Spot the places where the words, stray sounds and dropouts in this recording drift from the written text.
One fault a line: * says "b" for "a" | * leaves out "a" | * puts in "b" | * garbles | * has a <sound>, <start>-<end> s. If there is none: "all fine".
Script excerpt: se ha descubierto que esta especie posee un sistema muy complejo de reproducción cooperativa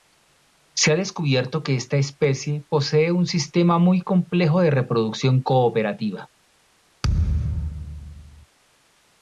* has a thud, 7.0-8.5 s